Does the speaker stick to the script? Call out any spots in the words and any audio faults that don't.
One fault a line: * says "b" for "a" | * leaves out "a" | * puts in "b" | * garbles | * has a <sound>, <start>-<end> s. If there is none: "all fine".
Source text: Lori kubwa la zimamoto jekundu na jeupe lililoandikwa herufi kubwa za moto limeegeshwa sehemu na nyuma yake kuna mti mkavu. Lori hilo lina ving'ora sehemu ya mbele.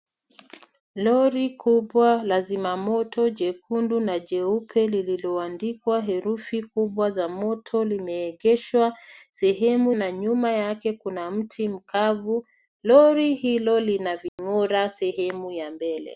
* has a dropout, 14.3-14.4 s